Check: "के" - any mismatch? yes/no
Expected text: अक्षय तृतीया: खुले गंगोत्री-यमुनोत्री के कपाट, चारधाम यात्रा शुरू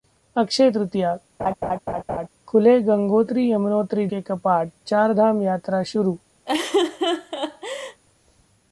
no